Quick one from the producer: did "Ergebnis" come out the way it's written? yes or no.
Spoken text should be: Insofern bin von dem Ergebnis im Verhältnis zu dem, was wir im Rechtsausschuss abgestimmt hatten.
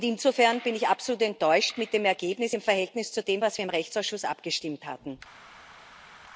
yes